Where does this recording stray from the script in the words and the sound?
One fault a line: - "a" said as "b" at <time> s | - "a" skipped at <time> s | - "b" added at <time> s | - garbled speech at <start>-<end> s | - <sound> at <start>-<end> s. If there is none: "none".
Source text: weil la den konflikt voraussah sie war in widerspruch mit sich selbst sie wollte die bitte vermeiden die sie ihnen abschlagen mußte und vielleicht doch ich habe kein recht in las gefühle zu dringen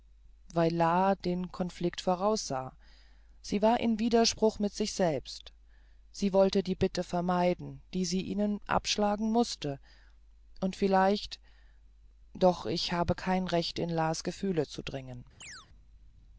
- chirp at 15.4-15.7 s